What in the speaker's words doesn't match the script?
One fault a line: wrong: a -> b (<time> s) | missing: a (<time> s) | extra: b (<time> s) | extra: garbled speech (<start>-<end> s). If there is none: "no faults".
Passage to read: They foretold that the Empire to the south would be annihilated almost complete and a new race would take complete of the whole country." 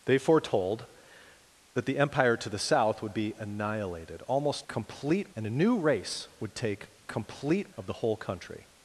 no faults